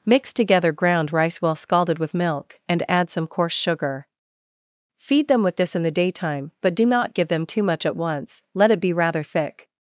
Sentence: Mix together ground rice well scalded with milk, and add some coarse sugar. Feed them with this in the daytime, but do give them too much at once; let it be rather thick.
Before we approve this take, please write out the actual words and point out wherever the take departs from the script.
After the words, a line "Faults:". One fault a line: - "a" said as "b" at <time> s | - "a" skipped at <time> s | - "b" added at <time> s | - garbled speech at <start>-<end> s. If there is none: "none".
Mix together ground rice well scalded with milk, and add some coarse sugar. Feed them with this in the daytime, but do not give them too much at once; let it be rather thick.
Faults:
- "not" added at 6.9 s